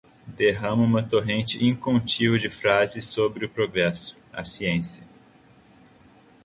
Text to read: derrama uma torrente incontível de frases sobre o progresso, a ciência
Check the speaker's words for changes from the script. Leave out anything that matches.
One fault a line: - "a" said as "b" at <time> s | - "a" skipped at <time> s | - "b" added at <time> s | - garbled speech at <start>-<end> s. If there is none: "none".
none